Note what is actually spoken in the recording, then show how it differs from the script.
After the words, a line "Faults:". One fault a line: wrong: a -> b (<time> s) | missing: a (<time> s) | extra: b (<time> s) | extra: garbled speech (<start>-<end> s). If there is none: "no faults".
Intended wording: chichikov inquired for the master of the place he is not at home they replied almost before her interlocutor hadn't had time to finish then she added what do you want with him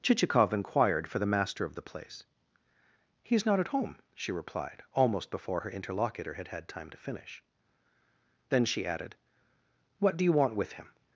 chichikov inquired for the master of the place he is not at home she replied almost before her interlocutor had had time to finish then she added what do you want with him
Faults:
wrong: they -> she (4.2 s)
wrong: hadn't -> had (6.3 s)